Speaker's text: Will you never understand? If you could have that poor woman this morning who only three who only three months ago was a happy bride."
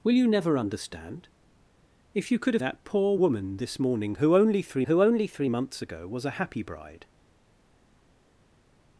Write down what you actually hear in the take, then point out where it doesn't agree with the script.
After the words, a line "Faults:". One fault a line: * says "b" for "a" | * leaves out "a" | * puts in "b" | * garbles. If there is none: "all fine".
Will you never understand? If you could have that poor woman this morning who only three who only three months ago was a happy bride."
Faults:
all fine